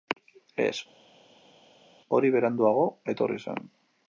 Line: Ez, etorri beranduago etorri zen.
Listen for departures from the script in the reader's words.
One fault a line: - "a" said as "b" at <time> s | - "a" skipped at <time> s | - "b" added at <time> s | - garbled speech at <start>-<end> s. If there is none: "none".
- "etorri" said as "hori" at 2.2 s